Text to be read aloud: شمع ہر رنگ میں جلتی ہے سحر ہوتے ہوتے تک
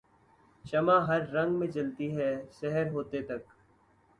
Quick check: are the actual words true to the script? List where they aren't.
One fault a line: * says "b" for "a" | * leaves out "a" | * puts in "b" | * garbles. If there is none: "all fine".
* leaves out "ہوتے"